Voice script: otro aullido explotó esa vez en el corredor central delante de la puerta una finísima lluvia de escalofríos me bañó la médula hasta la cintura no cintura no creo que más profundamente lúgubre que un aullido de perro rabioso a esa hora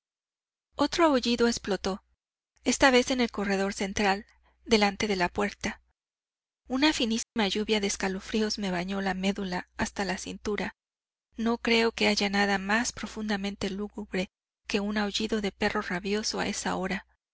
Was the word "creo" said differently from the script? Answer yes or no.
yes